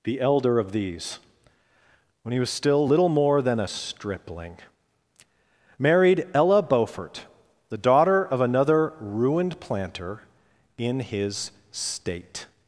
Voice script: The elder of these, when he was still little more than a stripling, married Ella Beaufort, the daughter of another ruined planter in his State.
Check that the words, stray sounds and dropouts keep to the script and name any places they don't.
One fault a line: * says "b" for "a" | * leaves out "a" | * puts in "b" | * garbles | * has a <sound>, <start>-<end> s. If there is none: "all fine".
all fine